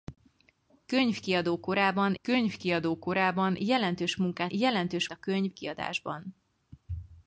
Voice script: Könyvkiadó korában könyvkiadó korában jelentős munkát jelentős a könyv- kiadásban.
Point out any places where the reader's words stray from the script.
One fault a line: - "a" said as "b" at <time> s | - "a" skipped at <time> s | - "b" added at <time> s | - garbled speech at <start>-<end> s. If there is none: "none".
none